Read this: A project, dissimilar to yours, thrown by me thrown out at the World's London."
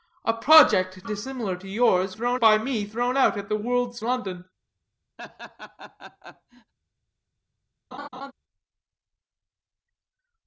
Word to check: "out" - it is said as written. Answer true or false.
true